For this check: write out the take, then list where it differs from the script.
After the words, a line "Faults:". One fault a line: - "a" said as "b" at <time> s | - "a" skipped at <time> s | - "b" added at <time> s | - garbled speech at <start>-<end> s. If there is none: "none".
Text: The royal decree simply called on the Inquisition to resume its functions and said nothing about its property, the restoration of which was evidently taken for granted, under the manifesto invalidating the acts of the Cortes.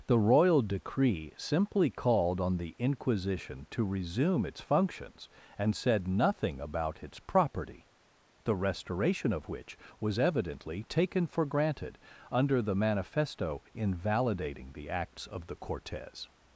The royal decree simply called on the Inquisition to resume its functions and said nothing about its property, the restoration of which was evidently taken for granted, under the manifesto invalidating the acts of the Cortes.
Faults:
none